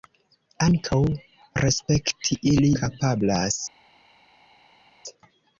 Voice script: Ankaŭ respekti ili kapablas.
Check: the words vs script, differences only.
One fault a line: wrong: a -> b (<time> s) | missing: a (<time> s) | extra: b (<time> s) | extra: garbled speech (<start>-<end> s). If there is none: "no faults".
no faults